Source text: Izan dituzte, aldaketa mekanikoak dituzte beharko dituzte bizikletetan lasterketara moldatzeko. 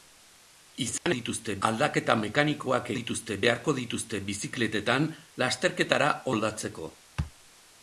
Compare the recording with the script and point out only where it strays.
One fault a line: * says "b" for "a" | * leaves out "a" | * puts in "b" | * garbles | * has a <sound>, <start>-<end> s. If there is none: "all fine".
* has a dropout, 1.0-1.1 s